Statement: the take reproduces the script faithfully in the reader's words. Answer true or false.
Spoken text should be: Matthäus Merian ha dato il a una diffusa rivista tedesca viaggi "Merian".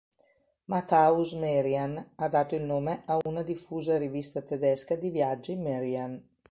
false